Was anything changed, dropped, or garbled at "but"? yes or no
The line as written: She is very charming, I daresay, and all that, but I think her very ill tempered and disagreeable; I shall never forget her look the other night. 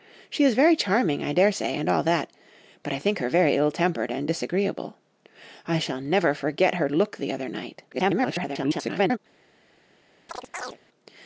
no